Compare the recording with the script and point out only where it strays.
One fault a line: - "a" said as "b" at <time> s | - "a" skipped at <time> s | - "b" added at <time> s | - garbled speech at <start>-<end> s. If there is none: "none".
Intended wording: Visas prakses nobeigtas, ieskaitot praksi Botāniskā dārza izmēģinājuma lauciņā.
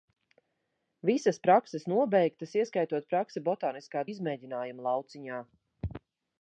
- "dārza" skipped at 4.0 s